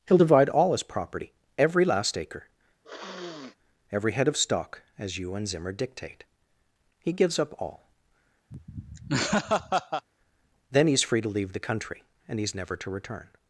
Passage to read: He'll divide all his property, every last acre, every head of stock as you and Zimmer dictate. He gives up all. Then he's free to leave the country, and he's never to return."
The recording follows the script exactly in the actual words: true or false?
true